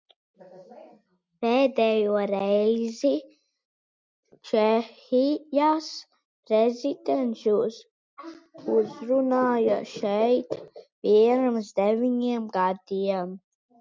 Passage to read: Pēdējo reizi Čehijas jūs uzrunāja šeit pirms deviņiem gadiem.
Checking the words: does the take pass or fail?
fail